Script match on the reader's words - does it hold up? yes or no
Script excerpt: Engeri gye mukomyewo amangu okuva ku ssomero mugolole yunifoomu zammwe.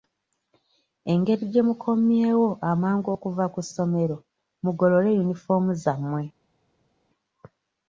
yes